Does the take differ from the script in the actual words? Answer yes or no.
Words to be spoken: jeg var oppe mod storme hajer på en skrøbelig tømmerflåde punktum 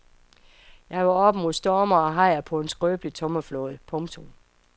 yes